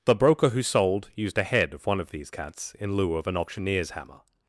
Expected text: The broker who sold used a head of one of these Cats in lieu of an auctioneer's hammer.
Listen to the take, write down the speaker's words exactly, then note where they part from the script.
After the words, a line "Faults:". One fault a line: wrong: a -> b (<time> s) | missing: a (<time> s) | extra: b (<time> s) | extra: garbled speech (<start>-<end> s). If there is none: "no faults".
The broker who sold used a head of one of these Cats in lieu of an auctioneer's hammer.
Faults:
no faults